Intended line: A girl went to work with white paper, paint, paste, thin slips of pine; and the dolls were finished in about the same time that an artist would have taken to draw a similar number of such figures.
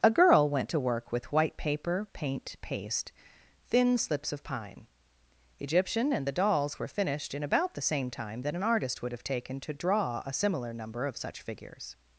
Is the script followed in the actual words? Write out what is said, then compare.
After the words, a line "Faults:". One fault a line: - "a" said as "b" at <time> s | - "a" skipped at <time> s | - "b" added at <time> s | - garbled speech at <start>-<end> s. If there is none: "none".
A girl went to work with white paper, paint, paste, thin slips of pine; egyptian and the dolls were finished in about the same time that an artist would have taken to draw a similar number of such figures.
Faults:
- "egyptian" added at 5.6 s